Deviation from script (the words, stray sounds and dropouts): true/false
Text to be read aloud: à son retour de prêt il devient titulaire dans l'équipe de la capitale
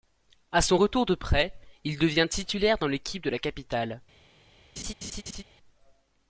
true